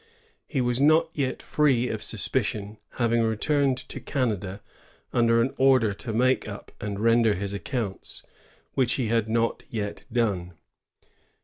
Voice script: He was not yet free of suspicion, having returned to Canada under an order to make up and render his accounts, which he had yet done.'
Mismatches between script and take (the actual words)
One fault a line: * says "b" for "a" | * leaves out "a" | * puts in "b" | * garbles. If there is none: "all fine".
* puts in "not"